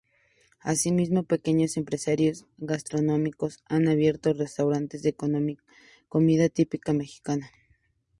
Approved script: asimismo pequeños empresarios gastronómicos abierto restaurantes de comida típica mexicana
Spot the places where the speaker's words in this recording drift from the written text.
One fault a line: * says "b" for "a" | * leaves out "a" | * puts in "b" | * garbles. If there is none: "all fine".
* puts in "han"